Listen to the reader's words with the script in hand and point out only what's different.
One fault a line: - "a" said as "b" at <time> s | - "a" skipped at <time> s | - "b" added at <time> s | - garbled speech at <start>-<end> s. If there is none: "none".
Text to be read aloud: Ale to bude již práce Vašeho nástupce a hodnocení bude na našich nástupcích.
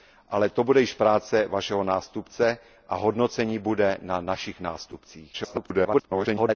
- garbled speech at 5.3-6.6 s